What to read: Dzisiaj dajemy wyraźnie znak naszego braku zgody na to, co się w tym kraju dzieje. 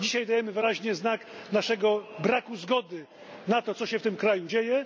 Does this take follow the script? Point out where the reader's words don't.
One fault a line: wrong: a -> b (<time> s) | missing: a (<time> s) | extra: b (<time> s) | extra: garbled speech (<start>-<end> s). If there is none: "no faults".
no faults